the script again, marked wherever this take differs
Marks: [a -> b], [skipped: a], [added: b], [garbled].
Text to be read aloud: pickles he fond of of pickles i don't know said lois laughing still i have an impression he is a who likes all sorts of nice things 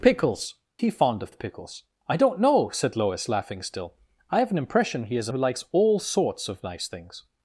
pickles he fond of of pickles i don't know said lois laughing still i have an impression he is a who likes all sorts of nice things